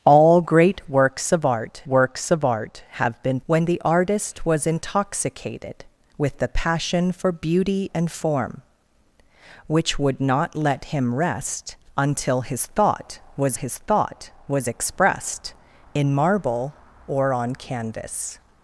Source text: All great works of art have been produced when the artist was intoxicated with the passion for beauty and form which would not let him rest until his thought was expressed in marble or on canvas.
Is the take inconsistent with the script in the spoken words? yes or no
yes